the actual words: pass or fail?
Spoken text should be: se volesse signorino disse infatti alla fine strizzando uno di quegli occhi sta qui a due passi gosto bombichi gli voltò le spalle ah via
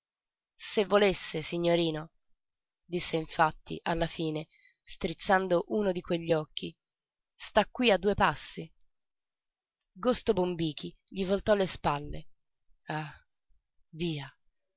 pass